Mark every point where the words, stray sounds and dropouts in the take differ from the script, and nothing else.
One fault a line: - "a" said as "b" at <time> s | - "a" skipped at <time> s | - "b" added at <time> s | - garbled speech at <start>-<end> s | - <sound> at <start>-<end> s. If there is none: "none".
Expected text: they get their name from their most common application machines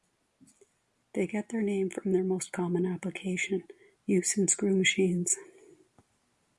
- "use in screw" added at 4.0 s